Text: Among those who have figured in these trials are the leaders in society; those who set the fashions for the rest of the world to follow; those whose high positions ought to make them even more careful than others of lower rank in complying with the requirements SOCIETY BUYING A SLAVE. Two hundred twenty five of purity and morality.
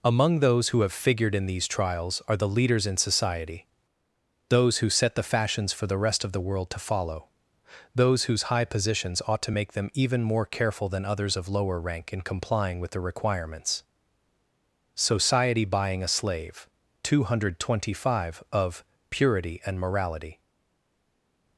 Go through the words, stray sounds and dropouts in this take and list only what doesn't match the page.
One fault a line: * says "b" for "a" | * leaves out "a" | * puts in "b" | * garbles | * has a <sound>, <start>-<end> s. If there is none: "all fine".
all fine